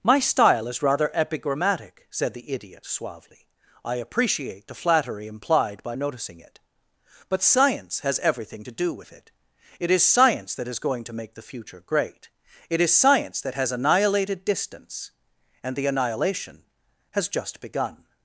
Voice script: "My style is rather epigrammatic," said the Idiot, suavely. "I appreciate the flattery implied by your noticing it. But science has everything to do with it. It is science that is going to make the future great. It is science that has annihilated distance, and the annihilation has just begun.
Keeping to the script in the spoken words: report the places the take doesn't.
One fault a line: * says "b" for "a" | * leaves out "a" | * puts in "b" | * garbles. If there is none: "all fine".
* leaves out "your"